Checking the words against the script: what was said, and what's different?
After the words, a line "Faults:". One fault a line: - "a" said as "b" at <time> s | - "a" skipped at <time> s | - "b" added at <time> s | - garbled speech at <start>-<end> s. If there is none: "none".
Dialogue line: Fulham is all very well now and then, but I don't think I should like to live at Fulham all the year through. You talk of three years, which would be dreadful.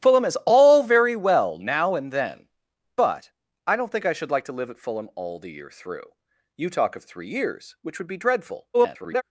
Fulham is all very well now and then, but I don't think I should like to live at Fulham all the year through. You talk of three years, which would be dreadful. [garbled]
Faults:
- garbled speech at 8.7-9.2 s